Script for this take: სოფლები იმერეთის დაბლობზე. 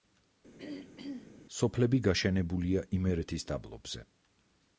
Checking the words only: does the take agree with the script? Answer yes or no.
no